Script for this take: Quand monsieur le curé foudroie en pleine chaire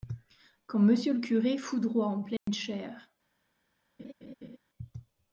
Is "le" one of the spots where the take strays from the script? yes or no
no